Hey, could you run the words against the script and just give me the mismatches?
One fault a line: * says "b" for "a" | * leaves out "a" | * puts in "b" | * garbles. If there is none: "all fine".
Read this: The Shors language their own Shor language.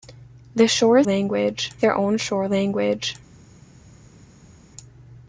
all fine